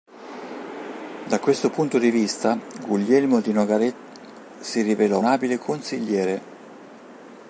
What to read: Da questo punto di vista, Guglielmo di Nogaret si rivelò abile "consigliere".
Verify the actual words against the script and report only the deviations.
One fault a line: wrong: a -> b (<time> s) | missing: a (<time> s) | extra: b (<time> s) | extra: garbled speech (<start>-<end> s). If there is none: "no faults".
no faults